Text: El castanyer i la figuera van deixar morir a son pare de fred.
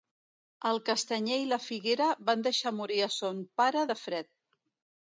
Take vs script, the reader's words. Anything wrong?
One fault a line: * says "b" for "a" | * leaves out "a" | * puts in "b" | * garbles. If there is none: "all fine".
all fine